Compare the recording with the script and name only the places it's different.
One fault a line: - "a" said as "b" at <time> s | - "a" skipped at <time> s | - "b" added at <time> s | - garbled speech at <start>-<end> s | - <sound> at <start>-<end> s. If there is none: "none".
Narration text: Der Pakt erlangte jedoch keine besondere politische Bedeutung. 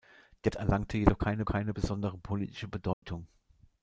- "Pakt" skipped at 0.5 s
- "keine" added at 1.4 s
- dropout at 2.9-3.0 s